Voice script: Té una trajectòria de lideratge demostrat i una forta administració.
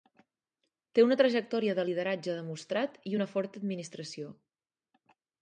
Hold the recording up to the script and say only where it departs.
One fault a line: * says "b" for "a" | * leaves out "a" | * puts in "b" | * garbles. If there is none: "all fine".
all fine